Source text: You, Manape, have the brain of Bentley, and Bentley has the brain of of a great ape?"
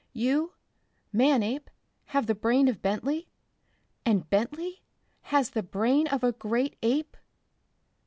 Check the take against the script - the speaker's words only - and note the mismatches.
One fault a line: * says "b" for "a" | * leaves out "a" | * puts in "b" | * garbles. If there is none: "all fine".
* leaves out "of"